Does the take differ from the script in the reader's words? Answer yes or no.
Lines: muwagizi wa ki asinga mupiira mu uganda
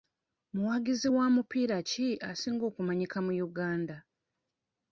yes